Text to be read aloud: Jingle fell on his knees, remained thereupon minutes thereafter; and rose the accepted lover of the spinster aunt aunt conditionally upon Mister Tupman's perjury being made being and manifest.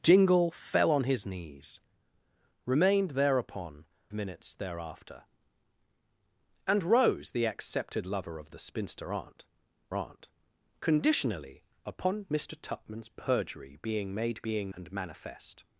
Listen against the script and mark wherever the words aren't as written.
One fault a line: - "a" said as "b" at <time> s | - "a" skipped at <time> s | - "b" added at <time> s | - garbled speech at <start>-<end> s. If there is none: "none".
none